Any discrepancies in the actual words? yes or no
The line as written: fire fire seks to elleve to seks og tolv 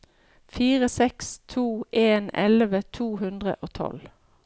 yes